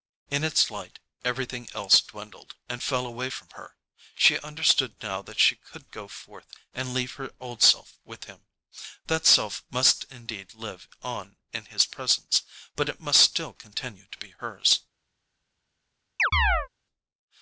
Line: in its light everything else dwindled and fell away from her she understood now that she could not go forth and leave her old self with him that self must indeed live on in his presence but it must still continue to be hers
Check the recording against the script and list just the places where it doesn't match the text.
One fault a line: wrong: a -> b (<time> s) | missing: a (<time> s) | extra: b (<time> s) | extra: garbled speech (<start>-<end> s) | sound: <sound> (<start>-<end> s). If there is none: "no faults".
missing: not (5.9 s)
sound: chirp (16.2-16.7 s)